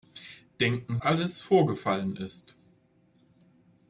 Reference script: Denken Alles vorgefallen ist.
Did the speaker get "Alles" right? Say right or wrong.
right